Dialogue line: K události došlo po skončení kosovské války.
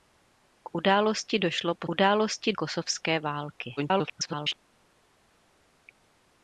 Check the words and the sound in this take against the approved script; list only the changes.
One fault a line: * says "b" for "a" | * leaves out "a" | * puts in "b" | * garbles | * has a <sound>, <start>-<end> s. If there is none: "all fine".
* says "události" for "skončení"
* garbles